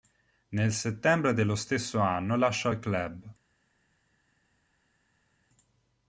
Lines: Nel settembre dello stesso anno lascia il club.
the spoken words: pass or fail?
pass